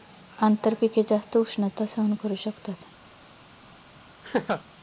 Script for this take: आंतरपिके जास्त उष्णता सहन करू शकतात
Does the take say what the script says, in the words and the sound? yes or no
no